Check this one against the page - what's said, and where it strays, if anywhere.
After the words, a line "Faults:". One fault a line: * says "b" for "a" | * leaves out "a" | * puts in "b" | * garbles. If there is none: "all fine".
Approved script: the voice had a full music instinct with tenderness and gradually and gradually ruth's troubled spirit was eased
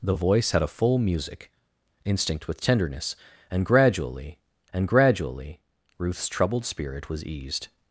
the voice had a full music instinct with tenderness and gradually and gradually ruth's troubled spirit was eased
Faults:
all fine